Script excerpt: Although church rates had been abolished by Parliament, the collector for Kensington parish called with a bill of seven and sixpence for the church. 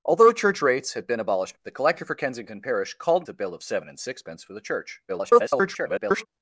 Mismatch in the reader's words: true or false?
true